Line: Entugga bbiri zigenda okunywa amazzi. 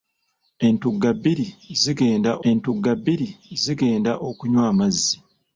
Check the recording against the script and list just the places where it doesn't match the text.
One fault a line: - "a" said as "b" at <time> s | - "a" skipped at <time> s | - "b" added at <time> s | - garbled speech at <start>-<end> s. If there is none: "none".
- "entugga bbiri zigenda" added at 2.5 s